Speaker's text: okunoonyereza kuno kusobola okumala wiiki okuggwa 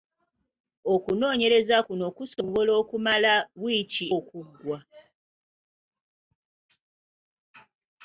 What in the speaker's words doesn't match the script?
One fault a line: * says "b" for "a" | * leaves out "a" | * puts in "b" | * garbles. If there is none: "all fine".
all fine